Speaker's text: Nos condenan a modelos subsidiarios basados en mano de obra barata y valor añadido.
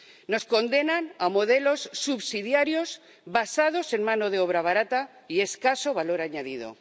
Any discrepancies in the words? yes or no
yes